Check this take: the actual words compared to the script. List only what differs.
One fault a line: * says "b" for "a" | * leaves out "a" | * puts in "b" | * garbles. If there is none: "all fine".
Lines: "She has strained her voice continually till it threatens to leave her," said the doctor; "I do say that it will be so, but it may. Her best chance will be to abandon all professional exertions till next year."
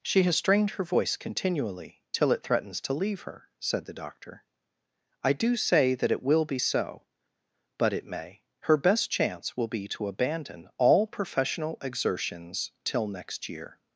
all fine